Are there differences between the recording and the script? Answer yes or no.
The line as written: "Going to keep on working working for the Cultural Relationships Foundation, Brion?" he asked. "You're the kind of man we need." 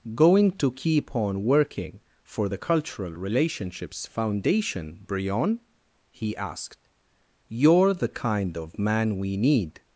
yes